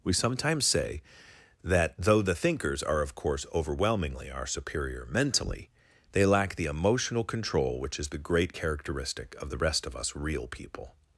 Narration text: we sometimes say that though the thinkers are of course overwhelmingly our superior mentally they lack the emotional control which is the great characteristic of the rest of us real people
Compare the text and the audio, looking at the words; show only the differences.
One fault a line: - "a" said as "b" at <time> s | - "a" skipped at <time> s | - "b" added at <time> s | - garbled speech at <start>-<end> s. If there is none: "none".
none